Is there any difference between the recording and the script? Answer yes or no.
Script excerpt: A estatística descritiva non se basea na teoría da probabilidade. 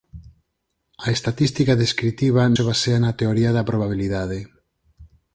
yes